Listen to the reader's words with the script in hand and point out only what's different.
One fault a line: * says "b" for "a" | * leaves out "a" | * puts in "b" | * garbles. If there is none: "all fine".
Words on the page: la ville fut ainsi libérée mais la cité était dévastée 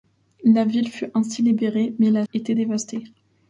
* leaves out "cité"